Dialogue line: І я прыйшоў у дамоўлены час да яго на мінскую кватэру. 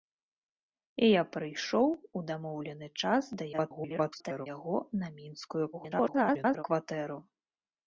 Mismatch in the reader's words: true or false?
true